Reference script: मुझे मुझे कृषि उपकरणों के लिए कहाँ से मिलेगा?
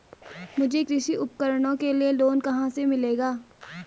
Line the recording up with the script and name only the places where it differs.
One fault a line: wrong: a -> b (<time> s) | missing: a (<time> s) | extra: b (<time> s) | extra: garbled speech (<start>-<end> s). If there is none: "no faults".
missing: मुझे (0.8 s)
extra: लोन (2.1 s)